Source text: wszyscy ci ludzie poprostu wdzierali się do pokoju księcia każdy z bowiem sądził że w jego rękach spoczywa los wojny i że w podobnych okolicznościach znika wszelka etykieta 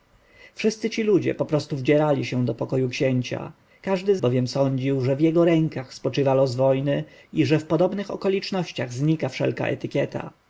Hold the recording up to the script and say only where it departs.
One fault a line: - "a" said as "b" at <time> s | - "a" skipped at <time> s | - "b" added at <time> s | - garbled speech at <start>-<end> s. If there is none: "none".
none